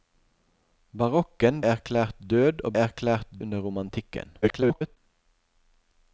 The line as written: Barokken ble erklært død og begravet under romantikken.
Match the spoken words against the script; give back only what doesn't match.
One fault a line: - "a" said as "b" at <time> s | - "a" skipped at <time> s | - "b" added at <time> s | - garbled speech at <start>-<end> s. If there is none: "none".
- "ble" skipped at 1.6 s
- "begravet" said as "erklært" at 2.8 s
- garbled speech at 4.4-5.0 s